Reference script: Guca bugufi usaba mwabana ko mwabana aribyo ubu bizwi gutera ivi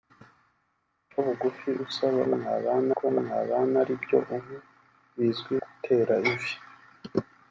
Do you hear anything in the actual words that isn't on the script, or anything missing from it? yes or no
no